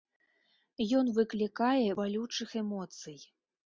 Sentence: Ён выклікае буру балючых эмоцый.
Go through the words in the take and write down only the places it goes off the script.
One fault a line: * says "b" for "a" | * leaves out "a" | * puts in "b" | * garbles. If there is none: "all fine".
* leaves out "буру"